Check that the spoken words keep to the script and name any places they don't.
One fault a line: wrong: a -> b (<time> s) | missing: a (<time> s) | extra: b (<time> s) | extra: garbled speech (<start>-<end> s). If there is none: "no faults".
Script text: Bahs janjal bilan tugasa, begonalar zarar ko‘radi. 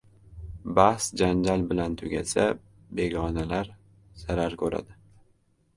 no faults